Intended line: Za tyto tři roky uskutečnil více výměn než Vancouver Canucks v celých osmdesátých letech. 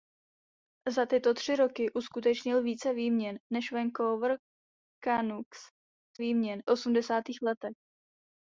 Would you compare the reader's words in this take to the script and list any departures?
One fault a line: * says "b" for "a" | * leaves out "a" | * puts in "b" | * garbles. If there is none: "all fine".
* says "výměn" for "celých"